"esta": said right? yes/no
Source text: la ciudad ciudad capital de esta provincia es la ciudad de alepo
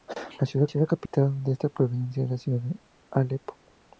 yes